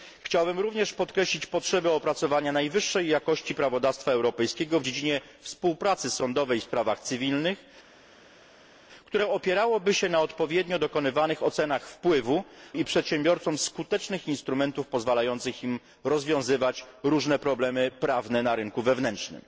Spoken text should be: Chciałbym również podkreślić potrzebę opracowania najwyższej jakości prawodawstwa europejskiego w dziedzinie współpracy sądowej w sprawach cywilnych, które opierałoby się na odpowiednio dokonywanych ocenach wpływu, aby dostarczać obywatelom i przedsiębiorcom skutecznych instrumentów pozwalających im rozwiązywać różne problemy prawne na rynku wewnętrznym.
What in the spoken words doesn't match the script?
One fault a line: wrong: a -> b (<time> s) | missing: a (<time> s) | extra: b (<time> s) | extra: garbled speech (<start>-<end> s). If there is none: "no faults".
missing: aby dostarczać obywatelom (12.4 s)